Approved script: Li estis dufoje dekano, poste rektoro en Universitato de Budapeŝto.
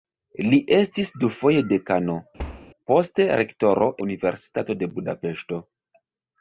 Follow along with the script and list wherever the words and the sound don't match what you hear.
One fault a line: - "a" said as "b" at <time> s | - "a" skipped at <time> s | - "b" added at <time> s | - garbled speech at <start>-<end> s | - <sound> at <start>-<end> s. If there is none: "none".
- thud at 2.4-2.7 s
- "en" skipped at 3.9 s